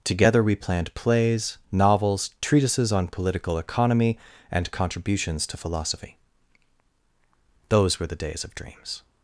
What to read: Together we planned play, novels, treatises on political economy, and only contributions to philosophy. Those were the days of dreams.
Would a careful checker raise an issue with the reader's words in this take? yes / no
yes